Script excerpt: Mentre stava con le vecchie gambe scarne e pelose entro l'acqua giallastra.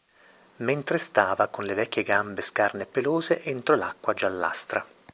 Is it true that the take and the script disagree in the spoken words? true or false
false